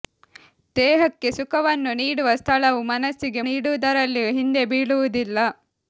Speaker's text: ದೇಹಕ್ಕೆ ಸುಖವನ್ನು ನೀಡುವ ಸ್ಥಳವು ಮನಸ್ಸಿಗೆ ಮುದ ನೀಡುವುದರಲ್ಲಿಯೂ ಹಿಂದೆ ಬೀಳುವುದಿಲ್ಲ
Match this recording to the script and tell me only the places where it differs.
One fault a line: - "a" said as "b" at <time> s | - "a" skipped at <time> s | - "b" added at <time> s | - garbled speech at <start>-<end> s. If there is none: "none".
- "ಮುದ" skipped at 3.4 s